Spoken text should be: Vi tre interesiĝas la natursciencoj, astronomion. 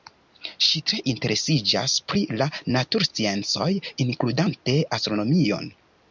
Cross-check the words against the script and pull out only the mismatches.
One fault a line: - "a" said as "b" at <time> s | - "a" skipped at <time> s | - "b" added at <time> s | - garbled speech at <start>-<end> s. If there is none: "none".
- "Vi" said as "Ŝi" at 0.7 s
- "pri" added at 2.1 s
- "inkludante" added at 4.1 s